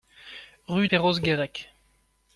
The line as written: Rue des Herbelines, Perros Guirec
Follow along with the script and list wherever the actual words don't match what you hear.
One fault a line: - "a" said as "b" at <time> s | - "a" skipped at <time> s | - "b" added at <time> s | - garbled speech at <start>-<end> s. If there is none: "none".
- "des Herbelines" skipped at 0.9 s